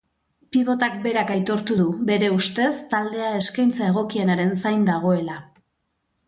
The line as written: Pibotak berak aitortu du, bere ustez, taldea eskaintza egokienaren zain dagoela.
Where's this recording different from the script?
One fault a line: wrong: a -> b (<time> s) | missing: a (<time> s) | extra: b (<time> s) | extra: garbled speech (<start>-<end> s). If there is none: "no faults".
no faults